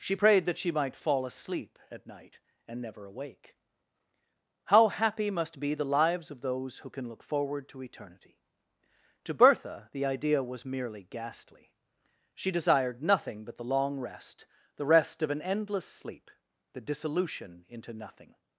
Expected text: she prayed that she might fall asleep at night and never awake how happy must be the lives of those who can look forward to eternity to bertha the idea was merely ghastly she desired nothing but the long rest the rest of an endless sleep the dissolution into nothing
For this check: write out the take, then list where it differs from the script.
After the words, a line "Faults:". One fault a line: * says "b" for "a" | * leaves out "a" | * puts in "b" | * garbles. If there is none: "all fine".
she prayed that she might fall asleep at night and never awake how happy must be the lives of those who can look forward to eternity to bertha the idea was merely ghastly she desired nothing but the long rest the rest of an endless sleep the dissolution into nothing
Faults:
all fine